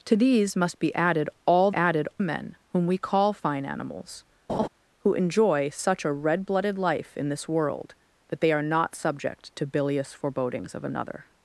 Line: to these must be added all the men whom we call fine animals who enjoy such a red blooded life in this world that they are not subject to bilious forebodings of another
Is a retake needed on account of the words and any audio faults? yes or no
yes